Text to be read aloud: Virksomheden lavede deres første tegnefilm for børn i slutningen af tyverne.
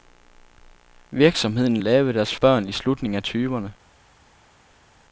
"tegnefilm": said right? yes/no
no